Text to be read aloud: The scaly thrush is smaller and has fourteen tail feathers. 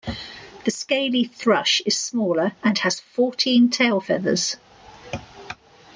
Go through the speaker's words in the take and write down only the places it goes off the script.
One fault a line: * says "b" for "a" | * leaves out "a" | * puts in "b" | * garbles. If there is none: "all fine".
all fine